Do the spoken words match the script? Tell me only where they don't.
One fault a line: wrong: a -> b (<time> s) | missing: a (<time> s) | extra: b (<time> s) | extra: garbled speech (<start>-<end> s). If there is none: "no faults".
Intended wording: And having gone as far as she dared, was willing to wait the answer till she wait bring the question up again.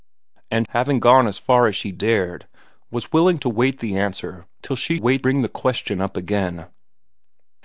no faults